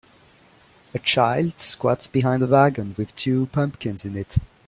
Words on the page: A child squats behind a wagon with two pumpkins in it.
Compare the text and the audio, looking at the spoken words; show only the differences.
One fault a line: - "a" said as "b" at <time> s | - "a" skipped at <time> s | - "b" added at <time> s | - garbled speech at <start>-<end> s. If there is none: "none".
none